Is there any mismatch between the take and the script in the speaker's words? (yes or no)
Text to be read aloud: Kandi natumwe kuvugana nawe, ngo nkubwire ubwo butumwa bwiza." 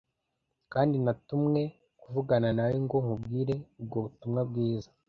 no